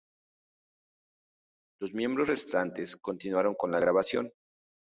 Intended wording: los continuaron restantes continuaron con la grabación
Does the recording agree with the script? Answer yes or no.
no